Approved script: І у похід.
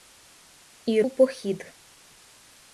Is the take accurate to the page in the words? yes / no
yes